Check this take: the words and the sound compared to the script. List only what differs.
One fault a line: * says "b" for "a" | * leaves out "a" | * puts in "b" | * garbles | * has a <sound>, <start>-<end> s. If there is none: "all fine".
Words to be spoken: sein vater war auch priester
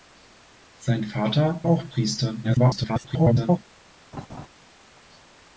* leaves out "war"
* garbles
* has a laugh, 4.1-4.5 s